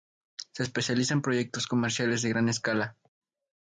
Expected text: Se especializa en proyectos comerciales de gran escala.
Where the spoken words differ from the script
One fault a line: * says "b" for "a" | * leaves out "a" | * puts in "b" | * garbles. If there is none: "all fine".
all fine